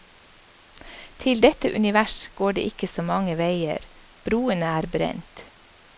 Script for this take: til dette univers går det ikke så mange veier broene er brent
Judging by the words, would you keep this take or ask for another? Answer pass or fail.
pass